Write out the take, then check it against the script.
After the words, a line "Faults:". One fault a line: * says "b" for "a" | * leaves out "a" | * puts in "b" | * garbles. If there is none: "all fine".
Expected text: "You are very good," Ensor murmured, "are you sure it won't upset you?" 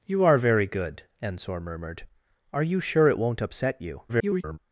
"You are very good," Ensor murmured, "are you sure it won't upset you?" [garbled]
Faults:
* garbles